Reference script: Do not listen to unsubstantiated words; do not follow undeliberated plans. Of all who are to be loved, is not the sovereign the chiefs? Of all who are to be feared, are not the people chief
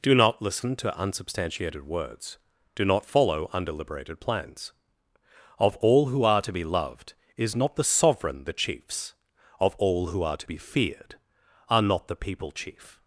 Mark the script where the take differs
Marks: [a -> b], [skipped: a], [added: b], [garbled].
Do not listen to unsubstantiated words; do not follow undeliberated plans. Of all who are to be loved, is not the sovereign the chiefs? Of all who are to be feared, are not the people chief